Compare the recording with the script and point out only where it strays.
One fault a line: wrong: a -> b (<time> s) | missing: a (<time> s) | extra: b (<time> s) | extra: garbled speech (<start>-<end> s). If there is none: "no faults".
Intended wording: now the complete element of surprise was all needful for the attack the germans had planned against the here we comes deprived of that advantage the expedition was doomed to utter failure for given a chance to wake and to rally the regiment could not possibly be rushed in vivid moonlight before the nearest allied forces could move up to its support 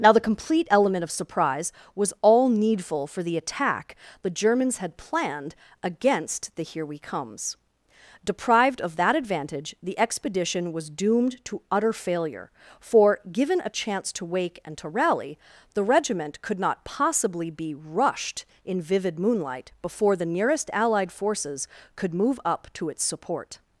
no faults